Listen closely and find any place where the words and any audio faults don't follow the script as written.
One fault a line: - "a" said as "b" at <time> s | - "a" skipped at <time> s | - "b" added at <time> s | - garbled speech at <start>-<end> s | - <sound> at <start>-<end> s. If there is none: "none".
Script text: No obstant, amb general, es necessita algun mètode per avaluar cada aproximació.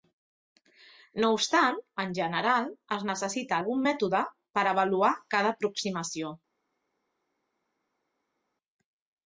- "amb" said as "en" at 2.0 s